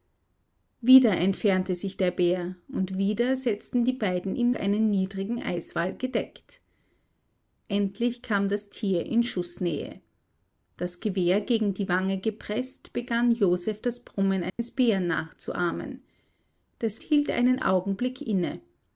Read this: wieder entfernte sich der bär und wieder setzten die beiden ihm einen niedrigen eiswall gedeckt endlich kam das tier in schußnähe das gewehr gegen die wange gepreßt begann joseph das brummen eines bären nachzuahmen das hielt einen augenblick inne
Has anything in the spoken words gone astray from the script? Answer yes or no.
no